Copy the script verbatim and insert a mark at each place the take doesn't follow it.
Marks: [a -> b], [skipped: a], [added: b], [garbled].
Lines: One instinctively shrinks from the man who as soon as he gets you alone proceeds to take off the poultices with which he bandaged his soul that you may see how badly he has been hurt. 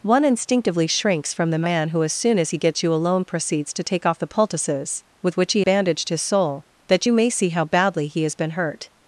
One instinctively shrinks from the man who as soon as he gets you alone proceeds to take off the poultices with which he bandaged his soul that you may see how badly he has been hurt.